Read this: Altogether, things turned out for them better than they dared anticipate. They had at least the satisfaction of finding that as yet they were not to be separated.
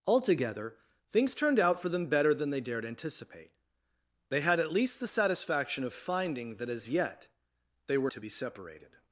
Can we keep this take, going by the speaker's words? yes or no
no